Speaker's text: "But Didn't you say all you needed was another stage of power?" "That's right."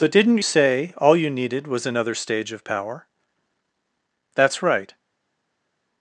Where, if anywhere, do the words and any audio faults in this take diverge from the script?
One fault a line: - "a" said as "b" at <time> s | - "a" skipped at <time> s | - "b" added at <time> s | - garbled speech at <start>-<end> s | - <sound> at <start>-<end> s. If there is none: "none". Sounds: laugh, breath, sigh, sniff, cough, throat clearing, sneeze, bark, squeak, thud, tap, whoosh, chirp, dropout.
- "you" skipped at 0.4 s